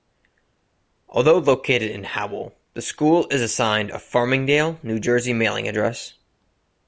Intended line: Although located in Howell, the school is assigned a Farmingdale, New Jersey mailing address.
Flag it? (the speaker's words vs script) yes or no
no